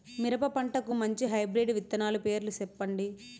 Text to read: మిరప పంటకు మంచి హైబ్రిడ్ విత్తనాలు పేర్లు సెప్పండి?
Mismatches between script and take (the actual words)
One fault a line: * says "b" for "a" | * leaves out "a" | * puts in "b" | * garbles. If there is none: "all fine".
all fine